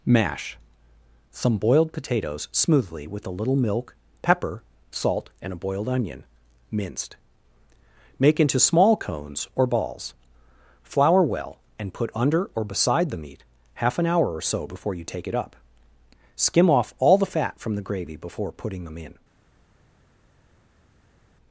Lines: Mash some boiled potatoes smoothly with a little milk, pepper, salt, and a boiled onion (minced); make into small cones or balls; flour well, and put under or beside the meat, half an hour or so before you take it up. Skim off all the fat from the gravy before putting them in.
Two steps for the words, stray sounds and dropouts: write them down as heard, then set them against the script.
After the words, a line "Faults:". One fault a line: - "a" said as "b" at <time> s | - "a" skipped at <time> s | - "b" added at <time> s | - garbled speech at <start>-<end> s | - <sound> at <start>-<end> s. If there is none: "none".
Mash some boiled potatoes smoothly with a little milk, pepper, salt, and a boiled onion (minced); make into small cones or balls; flour well, and put under or beside the meat, half an hour or so before you take it up. Skim off all the fat from the gravy before putting them in.
Faults:
none